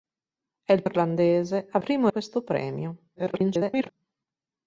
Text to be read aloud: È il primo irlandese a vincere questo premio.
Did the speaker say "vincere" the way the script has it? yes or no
no